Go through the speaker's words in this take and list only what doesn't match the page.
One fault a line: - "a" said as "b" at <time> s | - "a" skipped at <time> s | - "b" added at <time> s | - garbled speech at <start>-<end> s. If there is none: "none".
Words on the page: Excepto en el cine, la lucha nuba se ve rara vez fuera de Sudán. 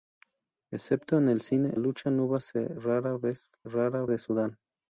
- "la" skipped at 1.8 s
- "fuera" said as "rara" at 3.7 s